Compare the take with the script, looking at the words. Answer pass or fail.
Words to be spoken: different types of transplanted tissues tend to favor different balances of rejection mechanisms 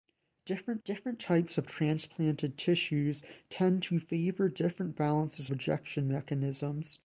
fail